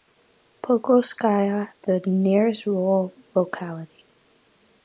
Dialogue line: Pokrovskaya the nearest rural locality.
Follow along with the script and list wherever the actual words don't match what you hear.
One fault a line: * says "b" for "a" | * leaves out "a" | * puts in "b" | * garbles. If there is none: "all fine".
all fine